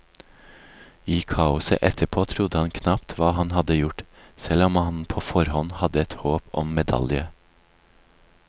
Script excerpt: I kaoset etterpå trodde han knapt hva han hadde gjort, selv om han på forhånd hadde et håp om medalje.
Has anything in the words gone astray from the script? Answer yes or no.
no